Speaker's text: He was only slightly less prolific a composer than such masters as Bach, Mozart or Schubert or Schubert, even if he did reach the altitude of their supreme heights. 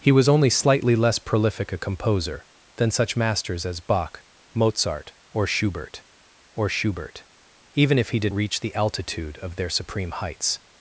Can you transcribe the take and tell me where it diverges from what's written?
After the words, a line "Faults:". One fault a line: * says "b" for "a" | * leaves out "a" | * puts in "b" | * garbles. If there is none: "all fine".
He was only slightly less prolific a composer than such masters as Bach, Mozart or Schubert or Schubert, even if he did reach the altitude of their supreme heights.
Faults:
all fine